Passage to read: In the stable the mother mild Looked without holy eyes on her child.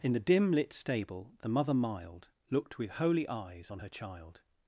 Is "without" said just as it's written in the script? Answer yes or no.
no